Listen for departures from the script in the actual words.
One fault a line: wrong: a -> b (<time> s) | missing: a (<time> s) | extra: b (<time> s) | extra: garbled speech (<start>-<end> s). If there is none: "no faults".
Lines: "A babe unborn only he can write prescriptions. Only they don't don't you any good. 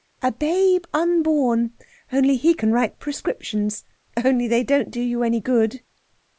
wrong: don't -> do (4.9 s)